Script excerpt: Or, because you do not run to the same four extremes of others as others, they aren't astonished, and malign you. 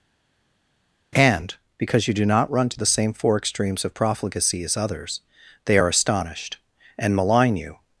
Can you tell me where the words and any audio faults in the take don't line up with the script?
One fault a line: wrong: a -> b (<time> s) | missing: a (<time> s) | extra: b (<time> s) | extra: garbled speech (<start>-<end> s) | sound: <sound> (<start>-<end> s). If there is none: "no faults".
wrong: Or -> And (1.1 s)
wrong: others -> profligacy (3.9 s)
wrong: aren't -> are (5.8 s)